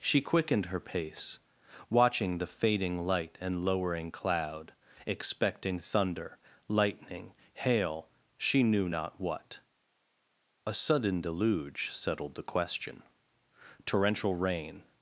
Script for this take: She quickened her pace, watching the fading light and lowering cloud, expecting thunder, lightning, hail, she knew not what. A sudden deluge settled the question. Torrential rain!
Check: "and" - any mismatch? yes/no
no